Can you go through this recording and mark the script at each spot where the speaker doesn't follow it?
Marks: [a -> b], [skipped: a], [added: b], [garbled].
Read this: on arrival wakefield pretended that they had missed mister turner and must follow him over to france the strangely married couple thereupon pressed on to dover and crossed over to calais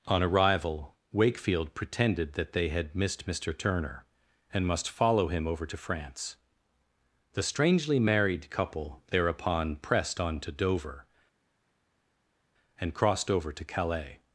on arrival wakefield pretended that they had missed mister turner and must follow him over to france the strangely married couple thereupon pressed on to dover and crossed over to calais